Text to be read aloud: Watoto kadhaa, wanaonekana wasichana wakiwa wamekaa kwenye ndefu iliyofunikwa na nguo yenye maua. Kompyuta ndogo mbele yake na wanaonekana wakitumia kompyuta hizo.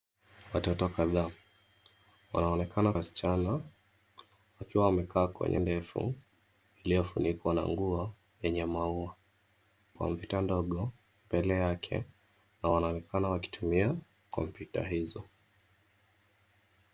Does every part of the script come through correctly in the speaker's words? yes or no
yes